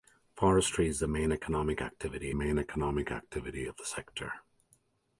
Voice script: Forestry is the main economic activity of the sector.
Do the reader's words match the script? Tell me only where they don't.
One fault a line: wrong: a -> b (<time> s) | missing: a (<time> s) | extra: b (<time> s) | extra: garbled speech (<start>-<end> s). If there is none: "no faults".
extra: main economic activity (2.3 s)